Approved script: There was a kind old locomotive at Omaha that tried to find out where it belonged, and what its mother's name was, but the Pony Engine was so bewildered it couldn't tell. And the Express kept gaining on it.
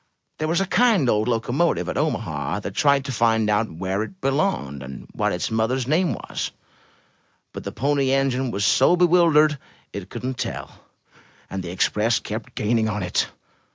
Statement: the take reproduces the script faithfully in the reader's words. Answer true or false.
true